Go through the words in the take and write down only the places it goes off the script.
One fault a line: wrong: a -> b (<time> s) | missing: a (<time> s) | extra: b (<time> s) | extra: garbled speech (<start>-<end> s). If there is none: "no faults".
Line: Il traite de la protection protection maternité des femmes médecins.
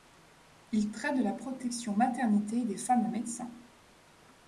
missing: protection (1.9 s)